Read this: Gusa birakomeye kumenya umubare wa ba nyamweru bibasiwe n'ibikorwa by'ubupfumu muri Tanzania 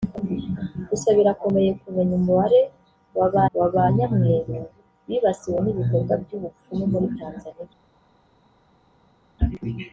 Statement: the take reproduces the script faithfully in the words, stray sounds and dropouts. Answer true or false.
false